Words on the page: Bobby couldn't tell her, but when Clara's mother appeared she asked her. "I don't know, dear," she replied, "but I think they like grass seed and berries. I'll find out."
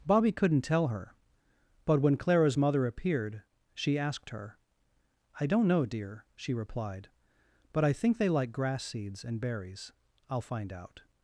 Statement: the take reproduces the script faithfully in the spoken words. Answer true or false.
false